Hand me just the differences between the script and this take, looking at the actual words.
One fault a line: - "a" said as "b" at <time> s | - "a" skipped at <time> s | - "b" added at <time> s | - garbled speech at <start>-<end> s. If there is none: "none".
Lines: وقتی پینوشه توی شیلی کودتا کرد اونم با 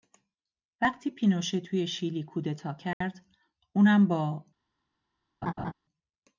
none